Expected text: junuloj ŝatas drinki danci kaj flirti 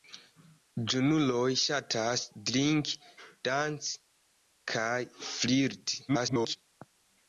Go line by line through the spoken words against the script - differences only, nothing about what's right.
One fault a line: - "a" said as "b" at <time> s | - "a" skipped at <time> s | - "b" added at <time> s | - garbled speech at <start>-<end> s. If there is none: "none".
- garbled speech at 6.1-6.6 s